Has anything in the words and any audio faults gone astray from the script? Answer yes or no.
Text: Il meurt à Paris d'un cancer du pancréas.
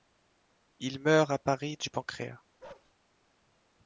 yes